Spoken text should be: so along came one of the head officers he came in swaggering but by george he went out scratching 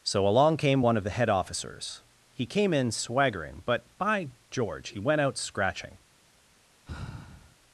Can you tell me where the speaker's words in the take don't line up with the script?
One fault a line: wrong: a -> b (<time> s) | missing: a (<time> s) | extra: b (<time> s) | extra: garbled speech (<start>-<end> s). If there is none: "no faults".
no faults